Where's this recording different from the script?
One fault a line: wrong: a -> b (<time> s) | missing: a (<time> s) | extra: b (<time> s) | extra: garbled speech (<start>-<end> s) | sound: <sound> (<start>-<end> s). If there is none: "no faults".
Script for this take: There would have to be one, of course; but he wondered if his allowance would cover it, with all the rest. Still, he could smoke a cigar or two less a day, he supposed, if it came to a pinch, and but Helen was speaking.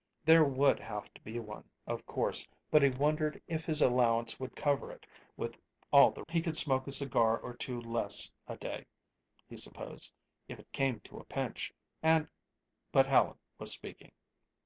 missing: rest Still (6.2 s)